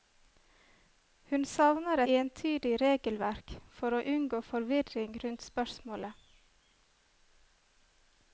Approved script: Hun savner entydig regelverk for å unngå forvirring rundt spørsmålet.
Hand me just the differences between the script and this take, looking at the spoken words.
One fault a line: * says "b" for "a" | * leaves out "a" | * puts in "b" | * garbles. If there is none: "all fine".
all fine